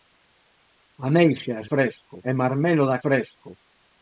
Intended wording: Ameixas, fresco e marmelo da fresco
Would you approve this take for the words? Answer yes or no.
yes